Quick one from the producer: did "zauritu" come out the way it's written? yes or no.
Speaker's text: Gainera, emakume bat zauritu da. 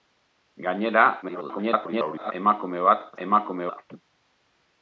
no